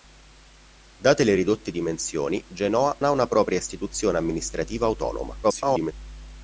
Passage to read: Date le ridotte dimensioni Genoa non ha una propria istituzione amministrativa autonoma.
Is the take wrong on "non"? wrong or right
wrong